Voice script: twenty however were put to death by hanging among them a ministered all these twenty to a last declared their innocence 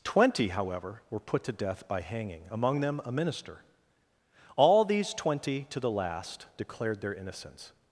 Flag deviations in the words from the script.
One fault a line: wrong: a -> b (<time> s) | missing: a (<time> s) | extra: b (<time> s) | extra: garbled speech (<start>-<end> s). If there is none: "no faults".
wrong: ministered -> minister (3.1 s)
wrong: a -> the (5.8 s)